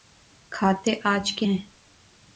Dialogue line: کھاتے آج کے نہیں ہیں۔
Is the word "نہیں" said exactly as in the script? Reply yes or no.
no